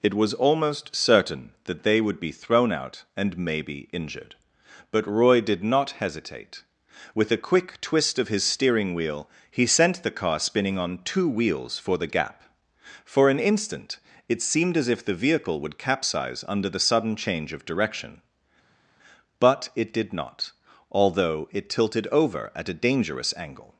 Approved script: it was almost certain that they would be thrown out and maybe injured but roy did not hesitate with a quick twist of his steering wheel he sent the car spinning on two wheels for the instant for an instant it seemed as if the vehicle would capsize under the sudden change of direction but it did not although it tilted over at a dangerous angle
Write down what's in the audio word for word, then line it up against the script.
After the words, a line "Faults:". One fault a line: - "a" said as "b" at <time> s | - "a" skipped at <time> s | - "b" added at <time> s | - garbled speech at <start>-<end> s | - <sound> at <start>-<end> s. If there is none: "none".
it was almost certain that they would be thrown out and maybe injured but roy did not hesitate with a quick twist of his steering wheel he sent the car spinning on two wheels for the gap for an instant it seemed as if the vehicle would capsize under the sudden change of direction but it did not although it tilted over at a dangerous angle
Faults:
- "instant" said as "gap" at 12.1 s